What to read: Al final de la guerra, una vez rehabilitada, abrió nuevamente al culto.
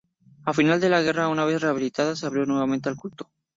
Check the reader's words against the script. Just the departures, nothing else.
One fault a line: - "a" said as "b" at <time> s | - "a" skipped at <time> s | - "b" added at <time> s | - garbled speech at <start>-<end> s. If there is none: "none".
- "se" added at 2.1 s